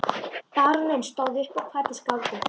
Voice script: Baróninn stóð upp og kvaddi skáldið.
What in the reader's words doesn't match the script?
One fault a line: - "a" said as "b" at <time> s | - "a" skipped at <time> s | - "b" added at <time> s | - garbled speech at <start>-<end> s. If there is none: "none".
none